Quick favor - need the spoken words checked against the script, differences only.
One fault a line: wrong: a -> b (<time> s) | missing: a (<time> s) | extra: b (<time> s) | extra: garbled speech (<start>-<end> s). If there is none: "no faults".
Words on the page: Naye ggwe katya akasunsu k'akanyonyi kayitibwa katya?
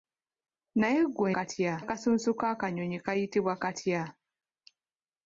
no faults